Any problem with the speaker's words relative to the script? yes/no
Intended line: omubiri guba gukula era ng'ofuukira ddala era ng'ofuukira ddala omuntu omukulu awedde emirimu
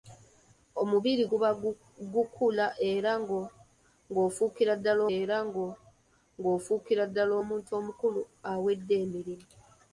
no